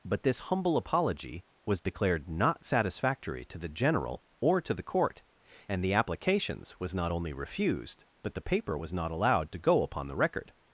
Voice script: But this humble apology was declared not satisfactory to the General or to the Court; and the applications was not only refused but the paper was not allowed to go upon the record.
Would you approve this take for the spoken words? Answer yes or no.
yes